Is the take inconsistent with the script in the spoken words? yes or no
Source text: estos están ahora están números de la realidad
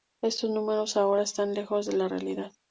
yes